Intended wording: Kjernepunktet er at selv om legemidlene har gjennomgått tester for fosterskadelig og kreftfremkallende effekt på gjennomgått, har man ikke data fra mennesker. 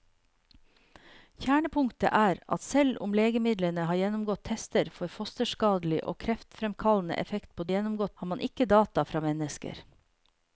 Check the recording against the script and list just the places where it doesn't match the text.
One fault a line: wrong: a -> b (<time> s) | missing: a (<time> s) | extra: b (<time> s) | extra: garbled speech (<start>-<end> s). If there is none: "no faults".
no faults